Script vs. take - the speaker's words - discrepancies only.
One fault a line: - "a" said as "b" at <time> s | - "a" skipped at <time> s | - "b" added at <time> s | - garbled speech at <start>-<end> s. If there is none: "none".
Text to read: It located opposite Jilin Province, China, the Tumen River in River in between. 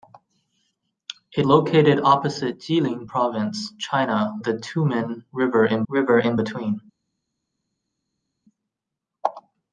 none